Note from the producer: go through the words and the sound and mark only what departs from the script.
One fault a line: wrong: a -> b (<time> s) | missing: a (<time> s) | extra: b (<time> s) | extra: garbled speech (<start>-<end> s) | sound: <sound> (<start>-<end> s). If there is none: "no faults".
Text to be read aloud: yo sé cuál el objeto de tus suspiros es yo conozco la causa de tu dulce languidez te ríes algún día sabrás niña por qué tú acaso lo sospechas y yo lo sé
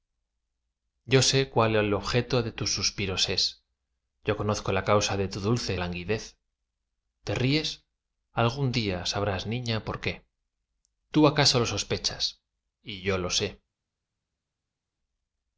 no faults